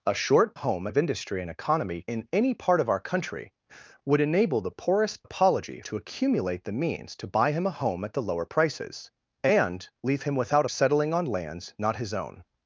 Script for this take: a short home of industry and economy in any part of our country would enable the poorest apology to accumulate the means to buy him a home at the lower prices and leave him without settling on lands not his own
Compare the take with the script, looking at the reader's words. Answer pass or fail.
pass